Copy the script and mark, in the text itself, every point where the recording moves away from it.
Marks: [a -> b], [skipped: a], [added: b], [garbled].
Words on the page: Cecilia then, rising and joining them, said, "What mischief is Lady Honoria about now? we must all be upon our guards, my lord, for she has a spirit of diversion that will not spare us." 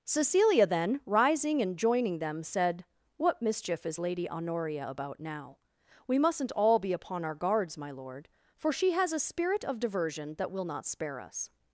Cecilia then, rising and joining them, said, "What mischief is Lady Honoria about now? we [must -> mustn't] all be upon our guards, my lord, for she has a spirit of diversion that will not spare us."